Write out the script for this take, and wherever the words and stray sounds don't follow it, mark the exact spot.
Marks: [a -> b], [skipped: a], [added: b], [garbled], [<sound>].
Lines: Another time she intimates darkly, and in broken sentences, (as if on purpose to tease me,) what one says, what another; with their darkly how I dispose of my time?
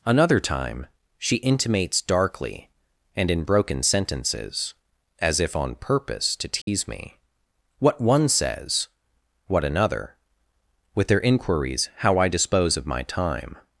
Another time she intimates darkly, and in broken sentences, (as if on purpose to tease [dropout] me,) what one says, what another; with their [darkly -> inquiries] how I dispose of my time?